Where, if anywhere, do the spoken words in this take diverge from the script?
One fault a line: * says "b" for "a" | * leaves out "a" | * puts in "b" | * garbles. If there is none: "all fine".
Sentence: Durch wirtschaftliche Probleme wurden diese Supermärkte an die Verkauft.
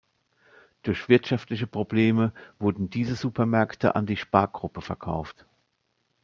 * puts in "Spar Gruppe"